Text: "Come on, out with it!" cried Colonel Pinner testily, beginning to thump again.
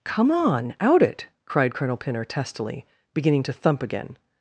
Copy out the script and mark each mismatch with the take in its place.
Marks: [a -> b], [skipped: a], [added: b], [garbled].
"Come on, out [skipped: with] it!" cried Colonel Pinner testily, beginning to thump again.